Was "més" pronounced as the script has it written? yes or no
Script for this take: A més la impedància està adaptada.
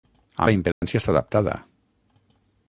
no